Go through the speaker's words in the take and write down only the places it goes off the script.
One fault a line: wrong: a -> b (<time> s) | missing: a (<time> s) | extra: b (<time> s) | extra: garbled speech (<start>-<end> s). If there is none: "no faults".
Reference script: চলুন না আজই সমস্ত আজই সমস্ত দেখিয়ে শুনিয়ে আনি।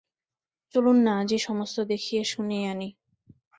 missing: আজই সমস্ত (1.8 s)